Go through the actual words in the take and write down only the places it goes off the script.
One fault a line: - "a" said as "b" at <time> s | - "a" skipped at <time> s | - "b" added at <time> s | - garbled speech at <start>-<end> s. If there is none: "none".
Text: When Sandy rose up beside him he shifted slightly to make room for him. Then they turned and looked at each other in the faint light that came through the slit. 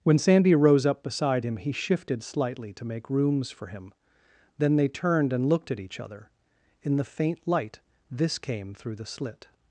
- "room" said as "rooms" at 3.1 s
- "that" said as "this" at 8.1 s